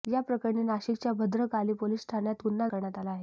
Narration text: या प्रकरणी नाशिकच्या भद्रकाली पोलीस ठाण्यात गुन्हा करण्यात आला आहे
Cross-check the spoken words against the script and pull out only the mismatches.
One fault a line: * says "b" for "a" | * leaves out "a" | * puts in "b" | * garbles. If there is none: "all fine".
all fine